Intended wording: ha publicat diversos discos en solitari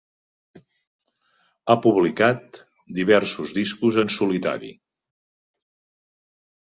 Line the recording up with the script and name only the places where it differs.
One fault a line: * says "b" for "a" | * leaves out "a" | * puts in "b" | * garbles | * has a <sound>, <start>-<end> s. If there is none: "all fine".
all fine